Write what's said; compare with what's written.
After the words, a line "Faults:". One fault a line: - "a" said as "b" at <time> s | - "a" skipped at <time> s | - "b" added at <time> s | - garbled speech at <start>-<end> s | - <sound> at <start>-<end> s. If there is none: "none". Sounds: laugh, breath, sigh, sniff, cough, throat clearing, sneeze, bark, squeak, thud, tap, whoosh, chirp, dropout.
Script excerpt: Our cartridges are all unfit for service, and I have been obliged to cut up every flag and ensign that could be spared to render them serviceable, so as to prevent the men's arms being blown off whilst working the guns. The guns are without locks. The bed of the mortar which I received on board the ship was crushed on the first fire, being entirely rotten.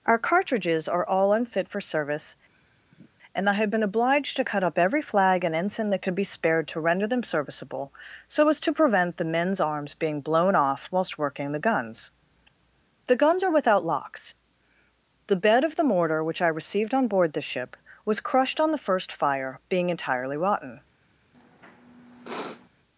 Our cartridges are all unfit for service, and I have been obliged to cut up every flag and ensign that could be spared to render them serviceable, so as to prevent the men's arms being blown off whilst working the guns. The guns are without locks. The bed of the mortar which I received on board the ship was crushed on the first fire, being entirely rotten.
Faults:
- sigh at 2.5-3.1 s
- sniff at 21.3-22.7 s